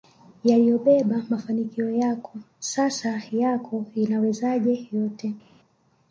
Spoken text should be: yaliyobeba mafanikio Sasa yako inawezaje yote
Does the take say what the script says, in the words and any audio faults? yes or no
no